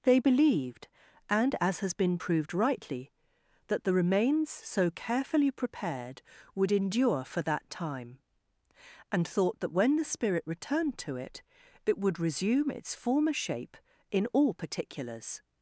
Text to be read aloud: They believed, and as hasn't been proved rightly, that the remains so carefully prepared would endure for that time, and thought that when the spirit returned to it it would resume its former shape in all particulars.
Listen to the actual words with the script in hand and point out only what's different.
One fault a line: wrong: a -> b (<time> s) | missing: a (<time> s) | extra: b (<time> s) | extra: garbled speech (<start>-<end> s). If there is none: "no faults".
wrong: hasn't -> has (1.8 s)